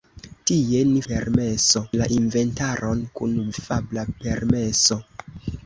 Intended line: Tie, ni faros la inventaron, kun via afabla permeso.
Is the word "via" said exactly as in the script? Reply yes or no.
no